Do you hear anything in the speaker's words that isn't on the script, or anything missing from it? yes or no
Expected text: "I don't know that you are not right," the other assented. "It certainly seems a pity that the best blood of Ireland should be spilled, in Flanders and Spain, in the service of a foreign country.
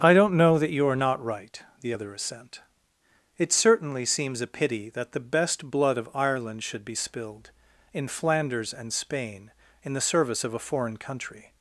yes